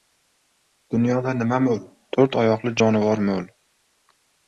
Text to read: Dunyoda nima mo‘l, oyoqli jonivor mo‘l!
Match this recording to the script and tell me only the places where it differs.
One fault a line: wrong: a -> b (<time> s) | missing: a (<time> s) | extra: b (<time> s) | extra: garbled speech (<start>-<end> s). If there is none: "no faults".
extra: to‘rt (2.2 s)